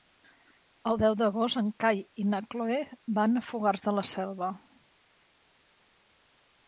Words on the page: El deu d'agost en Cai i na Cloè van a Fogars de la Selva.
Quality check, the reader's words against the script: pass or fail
pass